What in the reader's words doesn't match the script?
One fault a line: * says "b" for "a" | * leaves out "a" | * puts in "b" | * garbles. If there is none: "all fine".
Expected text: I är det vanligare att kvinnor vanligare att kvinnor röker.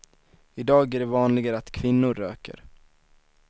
* puts in "dag"
* leaves out "vanligare att kvinnor"